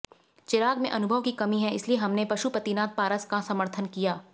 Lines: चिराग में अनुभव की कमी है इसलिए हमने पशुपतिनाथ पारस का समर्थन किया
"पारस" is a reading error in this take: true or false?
false